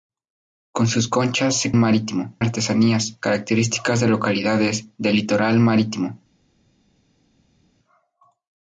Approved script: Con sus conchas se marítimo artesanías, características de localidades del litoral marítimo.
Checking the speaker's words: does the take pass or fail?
pass